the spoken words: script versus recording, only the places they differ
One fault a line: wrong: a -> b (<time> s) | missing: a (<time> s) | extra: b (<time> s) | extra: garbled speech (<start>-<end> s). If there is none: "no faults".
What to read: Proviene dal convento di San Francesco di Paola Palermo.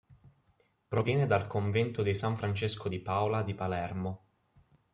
extra: di (3.4 s)